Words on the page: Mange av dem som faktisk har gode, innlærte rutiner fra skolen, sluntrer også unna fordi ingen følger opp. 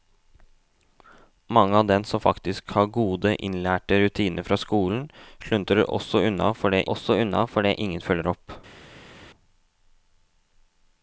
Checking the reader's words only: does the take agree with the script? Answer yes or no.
no